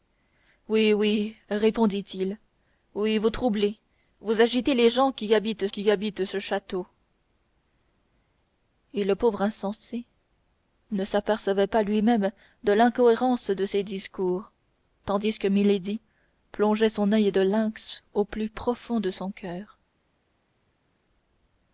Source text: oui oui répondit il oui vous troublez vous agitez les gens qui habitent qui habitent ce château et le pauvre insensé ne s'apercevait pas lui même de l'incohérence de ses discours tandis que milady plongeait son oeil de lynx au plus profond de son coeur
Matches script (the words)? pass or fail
pass